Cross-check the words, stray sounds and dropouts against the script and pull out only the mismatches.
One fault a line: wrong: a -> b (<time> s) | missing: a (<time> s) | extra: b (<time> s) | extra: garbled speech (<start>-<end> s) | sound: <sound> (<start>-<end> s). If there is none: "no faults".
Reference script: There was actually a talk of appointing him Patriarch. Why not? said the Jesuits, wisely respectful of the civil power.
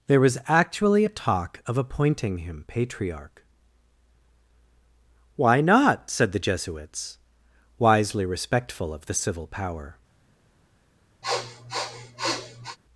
sound: sniff (11.2-12.8 s)